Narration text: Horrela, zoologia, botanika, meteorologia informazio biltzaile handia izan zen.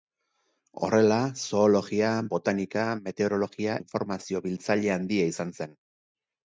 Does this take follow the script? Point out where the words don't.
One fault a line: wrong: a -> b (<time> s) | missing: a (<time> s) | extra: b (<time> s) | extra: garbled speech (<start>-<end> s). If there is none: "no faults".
no faults